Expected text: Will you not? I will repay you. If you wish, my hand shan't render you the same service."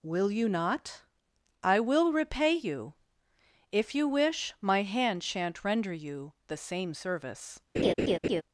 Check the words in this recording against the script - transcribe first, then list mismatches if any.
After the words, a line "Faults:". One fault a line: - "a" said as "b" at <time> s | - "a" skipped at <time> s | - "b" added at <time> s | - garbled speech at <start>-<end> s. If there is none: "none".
Will you not? I will repay you. If you wish, my hand shan't render you the same service."
Faults:
none